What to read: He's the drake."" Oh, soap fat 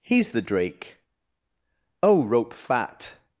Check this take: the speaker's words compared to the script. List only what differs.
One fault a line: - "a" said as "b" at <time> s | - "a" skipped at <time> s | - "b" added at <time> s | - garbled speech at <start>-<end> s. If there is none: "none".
- "soap" said as "rope" at 2.2 s